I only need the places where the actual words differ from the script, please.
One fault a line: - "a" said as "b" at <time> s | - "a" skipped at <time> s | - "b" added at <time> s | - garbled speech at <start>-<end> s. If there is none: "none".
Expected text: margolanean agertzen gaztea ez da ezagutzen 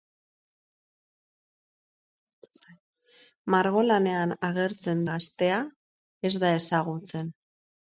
none